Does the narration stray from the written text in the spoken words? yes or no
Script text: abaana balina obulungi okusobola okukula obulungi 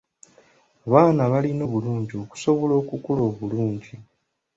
no